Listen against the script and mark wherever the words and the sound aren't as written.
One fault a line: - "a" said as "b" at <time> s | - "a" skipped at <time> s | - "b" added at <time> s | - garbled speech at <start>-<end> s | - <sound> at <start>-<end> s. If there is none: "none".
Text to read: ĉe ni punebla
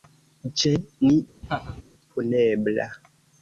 - laugh at 1.4-1.8 s